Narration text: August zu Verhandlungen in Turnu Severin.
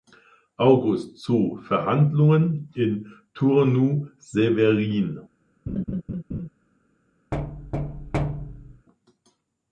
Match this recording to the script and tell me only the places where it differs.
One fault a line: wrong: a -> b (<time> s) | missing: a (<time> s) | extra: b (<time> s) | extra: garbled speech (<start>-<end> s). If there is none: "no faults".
no faults